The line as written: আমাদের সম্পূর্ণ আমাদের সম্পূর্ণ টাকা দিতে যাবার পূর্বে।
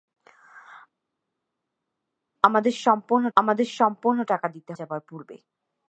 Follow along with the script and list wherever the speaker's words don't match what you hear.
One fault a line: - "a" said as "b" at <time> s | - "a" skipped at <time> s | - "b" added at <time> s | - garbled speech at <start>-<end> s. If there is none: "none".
none